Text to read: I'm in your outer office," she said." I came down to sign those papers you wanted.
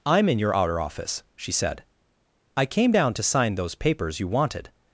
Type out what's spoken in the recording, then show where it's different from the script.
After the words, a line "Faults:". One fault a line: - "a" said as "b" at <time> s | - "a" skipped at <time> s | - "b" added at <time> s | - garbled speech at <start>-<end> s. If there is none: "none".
I'm in your outer office," she said." I came down to sign those papers you wanted.
Faults:
none